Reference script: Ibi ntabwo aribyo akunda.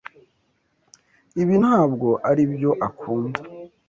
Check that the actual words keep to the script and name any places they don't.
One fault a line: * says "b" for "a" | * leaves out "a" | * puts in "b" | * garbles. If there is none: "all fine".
all fine